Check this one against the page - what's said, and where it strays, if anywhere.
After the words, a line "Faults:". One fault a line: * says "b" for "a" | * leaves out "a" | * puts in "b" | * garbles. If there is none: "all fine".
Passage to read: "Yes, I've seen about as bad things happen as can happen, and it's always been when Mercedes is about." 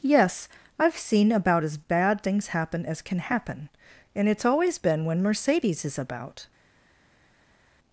"Yes, I've seen about as bad things happen as can happen, and it's always been when Mercedes is about."
Faults:
all fine